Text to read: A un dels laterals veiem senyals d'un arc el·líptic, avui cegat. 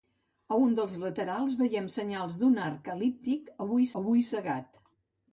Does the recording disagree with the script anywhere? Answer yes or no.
yes